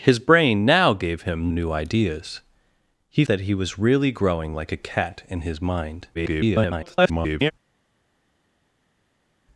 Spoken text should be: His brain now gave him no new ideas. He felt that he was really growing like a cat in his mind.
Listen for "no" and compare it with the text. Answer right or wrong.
wrong